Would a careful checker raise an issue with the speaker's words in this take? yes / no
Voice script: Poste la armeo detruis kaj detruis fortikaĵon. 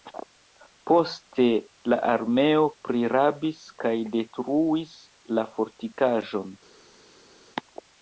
yes